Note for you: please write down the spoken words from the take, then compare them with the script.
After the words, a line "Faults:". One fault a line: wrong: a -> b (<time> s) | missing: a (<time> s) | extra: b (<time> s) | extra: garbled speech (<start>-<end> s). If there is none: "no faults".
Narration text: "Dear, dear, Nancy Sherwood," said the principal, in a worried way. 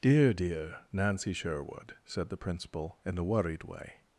"Dear, dear, Nancy Sherwood," said the principal, in a worried way.
Faults:
no faults